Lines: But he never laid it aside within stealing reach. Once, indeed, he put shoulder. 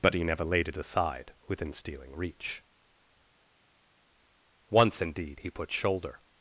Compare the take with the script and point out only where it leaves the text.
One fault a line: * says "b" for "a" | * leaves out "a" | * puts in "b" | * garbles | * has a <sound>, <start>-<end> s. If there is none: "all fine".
all fine